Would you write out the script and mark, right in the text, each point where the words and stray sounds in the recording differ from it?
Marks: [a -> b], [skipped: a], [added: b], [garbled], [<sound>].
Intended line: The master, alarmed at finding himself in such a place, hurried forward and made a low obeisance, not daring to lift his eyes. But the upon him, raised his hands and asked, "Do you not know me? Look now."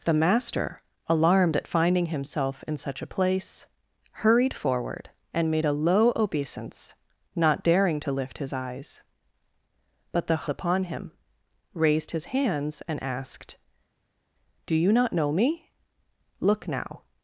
The master, alarmed at finding himself in such a place, hurried forward and made a low obeisance, not daring to lift his eyes. But the upon him, raised his hands and asked, "Do you not know me? Look now."